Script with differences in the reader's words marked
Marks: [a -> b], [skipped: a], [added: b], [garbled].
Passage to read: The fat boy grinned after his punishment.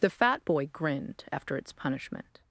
The fat boy grinned after [his -> its] punishment.